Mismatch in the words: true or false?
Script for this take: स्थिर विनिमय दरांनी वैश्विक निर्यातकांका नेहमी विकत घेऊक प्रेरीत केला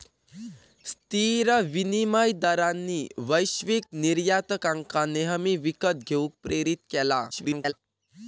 true